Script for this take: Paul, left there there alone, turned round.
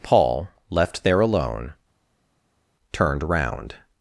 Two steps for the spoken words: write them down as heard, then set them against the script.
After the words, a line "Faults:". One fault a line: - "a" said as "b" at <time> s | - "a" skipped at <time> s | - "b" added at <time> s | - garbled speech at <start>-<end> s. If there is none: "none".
Paul, left there alone, turned round.
Faults:
- "there" skipped at 1.2 s